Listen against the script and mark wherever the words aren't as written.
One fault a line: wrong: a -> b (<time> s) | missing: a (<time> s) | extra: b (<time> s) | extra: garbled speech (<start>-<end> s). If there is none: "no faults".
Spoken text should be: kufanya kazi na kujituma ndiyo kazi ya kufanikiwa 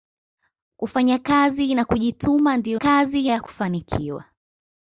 no faults